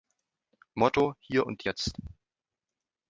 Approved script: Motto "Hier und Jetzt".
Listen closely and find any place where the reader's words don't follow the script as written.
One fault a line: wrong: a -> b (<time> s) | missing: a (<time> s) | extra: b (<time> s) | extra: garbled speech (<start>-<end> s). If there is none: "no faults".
no faults